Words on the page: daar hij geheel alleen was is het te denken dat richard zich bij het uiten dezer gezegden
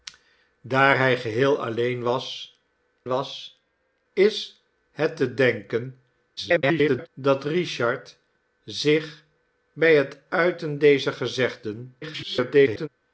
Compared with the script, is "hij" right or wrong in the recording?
right